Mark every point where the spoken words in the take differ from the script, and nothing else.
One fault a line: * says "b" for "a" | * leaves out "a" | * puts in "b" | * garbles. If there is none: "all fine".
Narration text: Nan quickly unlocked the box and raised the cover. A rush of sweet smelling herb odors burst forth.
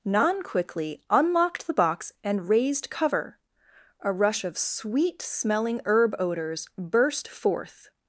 * leaves out "the"